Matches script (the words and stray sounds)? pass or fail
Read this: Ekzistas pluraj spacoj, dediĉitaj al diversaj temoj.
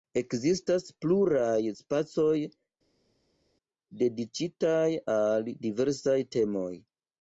pass